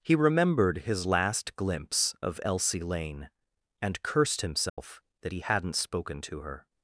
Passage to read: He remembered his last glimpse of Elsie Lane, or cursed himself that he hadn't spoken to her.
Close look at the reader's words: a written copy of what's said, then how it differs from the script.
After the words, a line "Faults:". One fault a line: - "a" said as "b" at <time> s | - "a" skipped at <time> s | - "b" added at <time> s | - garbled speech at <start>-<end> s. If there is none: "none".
He remembered his last glimpse of Elsie Lane, and cursed himself that he hadn't spoken to her.
Faults:
- "or" said as "and" at 3.8 s